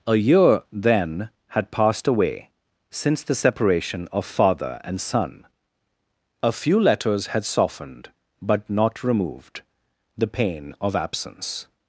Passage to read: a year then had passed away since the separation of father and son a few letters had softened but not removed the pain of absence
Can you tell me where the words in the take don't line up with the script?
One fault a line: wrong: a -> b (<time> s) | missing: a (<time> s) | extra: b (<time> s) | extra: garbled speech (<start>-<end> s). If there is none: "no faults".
no faults